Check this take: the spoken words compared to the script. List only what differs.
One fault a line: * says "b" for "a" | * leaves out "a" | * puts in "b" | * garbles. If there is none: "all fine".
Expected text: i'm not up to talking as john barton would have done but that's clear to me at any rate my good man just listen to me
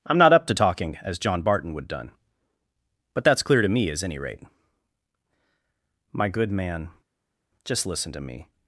* leaves out "have"
* says "as" for "at"